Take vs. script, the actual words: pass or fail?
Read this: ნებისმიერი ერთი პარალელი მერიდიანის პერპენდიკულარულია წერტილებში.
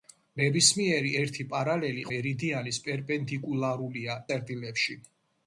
pass